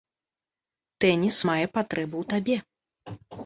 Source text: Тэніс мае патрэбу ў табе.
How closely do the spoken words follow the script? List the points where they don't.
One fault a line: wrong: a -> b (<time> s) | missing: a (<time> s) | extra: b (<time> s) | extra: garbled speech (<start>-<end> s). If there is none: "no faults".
no faults